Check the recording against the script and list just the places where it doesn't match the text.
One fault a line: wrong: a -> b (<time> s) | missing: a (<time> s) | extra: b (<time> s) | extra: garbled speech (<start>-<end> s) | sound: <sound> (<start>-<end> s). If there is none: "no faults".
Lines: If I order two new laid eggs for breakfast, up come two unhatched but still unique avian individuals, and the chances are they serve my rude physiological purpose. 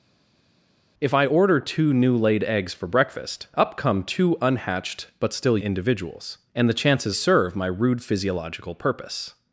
missing: unique avian (5.6 s)
missing: are they (7.1 s)